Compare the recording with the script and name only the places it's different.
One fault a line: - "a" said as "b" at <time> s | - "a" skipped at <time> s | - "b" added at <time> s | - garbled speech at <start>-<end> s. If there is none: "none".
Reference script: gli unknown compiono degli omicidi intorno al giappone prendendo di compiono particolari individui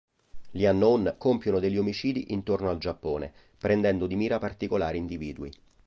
- "compiono" said as "mira" at 4.2 s